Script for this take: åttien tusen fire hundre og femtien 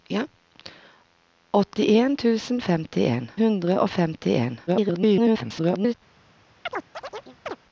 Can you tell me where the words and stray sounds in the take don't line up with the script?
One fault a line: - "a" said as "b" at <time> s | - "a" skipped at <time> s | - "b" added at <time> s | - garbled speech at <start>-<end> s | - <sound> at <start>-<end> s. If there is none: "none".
- "fire" said as "femtien" at 2.6 s
- garbled speech at 4.7-5.9 s
- chirp at 6.7-7.6 s